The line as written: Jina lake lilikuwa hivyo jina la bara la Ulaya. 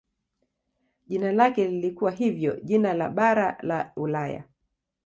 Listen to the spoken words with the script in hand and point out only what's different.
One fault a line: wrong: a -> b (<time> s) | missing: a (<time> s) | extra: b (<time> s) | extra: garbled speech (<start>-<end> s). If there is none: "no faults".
no faults